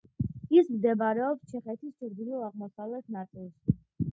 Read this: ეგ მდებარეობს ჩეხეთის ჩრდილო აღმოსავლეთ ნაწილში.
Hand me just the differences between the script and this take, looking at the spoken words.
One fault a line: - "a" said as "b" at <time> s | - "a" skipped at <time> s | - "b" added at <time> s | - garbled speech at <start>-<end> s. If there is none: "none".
- "ეგ" said as "ის" at 0.6 s